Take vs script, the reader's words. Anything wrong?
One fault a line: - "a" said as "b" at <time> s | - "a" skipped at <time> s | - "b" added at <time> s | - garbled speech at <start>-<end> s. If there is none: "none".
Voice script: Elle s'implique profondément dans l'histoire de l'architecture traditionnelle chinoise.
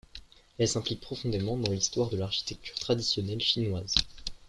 none